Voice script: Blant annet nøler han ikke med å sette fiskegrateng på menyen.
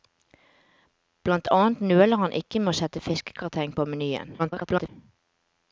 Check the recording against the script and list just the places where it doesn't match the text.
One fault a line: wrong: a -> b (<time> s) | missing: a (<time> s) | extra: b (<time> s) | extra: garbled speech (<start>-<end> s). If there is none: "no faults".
extra: garbled speech (4.4-4.9 s)